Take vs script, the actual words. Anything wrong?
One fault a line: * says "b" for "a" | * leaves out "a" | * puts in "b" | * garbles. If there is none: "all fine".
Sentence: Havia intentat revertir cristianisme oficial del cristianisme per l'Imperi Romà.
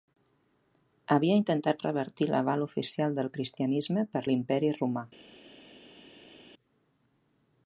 * says "l'aval" for "cristianisme"